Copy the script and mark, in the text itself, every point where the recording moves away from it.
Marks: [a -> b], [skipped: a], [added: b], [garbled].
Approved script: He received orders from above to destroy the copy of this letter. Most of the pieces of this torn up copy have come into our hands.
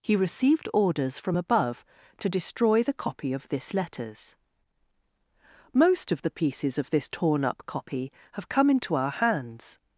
He received orders from above to destroy the copy of this [letter. -> letters] Most of the pieces of this torn up copy have come into our hands.